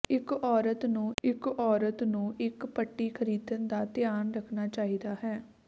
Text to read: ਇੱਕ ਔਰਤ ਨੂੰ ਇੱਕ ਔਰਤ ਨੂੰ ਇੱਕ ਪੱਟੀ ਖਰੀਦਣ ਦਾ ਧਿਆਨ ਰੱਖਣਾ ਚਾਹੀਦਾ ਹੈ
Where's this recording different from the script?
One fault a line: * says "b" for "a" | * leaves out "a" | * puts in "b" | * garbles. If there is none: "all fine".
all fine